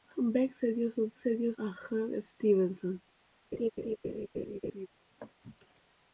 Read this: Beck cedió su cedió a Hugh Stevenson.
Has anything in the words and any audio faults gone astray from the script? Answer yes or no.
yes